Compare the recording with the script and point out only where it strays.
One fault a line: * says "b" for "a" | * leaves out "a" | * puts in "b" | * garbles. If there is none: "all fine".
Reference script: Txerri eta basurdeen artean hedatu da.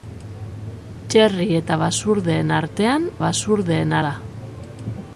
* says "basurdeen" for "hedatu"